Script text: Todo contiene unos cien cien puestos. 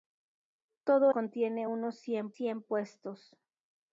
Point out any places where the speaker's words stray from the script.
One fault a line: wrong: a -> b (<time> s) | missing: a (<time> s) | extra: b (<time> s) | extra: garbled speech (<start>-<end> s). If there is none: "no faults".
no faults